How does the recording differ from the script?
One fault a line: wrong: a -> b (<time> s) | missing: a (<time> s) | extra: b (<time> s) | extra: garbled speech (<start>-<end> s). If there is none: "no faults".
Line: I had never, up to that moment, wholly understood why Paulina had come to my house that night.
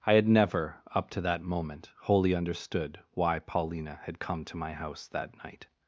no faults